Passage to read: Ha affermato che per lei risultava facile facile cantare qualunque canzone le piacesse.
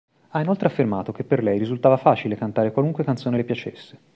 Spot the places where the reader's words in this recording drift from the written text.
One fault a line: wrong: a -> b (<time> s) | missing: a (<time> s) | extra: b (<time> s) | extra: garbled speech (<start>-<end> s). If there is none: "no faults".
extra: inoltre (0.4 s)
missing: facile (2.4 s)